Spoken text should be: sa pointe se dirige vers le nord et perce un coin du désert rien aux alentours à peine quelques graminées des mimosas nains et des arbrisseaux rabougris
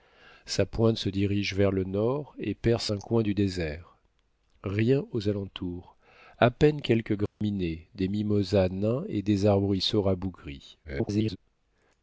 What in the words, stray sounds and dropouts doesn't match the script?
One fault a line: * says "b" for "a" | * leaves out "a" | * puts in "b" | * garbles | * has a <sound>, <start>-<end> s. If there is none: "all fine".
* has a dropout, 7.3-7.4 s
* garbles